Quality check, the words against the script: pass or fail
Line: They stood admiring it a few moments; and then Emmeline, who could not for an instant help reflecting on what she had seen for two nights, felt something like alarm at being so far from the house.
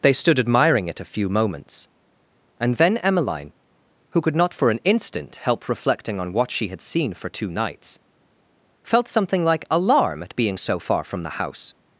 pass